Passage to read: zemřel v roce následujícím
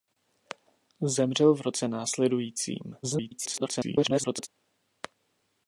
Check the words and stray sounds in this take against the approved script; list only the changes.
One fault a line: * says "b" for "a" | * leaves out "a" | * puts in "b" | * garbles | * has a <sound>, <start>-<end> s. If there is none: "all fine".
* garbles